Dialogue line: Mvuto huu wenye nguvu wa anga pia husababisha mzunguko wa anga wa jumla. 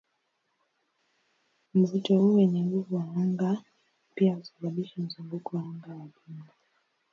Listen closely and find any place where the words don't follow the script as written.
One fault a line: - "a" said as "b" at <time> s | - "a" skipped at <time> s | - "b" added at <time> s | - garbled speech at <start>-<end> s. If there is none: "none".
none